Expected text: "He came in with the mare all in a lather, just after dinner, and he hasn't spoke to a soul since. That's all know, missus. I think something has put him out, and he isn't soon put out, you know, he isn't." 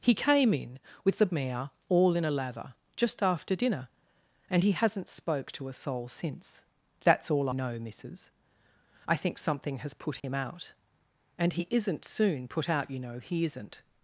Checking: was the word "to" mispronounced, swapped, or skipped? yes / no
no